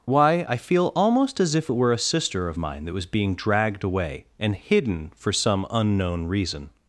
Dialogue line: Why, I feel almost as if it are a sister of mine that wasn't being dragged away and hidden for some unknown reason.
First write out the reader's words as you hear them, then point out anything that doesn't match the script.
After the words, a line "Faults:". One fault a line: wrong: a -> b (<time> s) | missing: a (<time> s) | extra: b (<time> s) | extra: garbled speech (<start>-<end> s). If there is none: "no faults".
Why, I feel almost as if it were a sister of mine that was being dragged away and hidden for some unknown reason.
Faults:
wrong: are -> were (1.7 s)
wrong: wasn't -> was (2.9 s)